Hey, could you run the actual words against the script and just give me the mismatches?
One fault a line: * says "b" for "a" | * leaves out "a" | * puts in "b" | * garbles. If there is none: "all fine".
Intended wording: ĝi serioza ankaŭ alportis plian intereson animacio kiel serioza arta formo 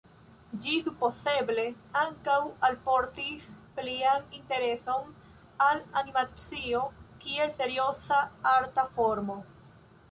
* says "supozeble" for "serioza"
* puts in "al"